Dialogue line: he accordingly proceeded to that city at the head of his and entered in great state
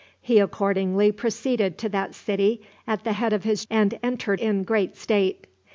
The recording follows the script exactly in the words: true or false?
true